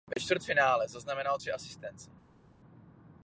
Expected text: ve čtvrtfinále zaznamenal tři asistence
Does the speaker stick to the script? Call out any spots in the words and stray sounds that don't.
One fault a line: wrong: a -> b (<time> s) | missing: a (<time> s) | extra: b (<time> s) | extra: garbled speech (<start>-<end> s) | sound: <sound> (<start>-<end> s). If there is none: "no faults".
no faults